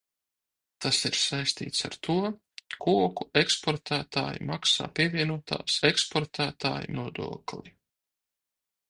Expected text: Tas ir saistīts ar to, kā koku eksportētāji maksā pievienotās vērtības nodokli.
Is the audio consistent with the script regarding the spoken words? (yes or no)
no